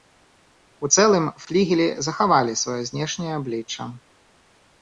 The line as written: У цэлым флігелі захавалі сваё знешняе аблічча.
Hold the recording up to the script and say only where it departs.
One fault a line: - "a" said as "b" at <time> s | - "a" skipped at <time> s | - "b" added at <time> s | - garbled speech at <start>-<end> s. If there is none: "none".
none